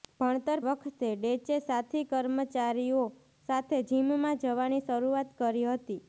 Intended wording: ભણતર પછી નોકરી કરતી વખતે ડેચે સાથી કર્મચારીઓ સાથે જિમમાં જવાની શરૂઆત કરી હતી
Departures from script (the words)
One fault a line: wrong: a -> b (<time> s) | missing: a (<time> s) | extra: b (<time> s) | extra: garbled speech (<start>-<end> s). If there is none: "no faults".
missing: પછી નોકરી કરતી (0.6 s)